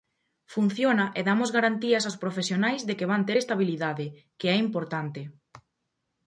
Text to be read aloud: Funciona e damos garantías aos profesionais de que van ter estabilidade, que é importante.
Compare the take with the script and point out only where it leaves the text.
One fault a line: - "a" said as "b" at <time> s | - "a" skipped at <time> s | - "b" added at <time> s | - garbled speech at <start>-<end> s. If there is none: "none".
none